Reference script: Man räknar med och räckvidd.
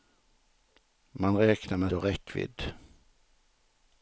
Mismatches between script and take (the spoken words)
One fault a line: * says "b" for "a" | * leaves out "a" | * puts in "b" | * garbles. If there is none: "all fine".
all fine